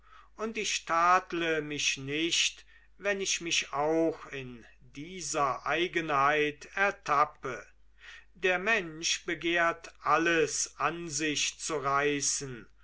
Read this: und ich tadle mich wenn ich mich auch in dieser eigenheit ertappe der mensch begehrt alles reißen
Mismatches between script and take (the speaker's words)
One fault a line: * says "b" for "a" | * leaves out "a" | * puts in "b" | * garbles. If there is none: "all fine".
* puts in "nicht"
* puts in "an sich zu"